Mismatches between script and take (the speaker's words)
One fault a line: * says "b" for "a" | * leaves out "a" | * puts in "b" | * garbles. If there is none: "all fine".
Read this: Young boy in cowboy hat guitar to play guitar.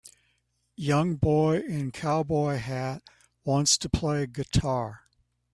* says "wants" for "guitar"